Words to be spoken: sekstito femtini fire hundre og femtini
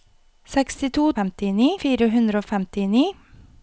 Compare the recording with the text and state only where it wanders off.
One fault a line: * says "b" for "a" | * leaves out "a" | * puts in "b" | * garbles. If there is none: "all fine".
all fine